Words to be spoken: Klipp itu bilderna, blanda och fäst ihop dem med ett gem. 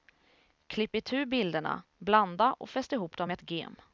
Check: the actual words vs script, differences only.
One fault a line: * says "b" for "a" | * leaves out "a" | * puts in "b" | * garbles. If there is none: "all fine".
all fine